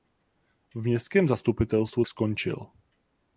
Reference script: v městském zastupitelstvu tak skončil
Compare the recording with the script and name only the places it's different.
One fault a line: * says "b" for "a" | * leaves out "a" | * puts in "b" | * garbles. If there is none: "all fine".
* leaves out "tak"